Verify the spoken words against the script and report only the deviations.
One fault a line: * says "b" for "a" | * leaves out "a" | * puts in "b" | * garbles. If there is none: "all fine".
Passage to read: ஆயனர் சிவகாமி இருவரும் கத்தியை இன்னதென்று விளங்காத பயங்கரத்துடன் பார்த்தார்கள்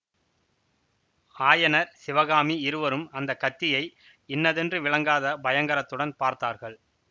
* puts in "அந்த"